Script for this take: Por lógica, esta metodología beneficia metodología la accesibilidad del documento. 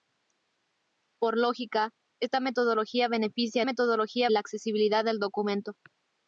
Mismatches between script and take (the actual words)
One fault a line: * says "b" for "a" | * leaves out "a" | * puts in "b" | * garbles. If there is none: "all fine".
all fine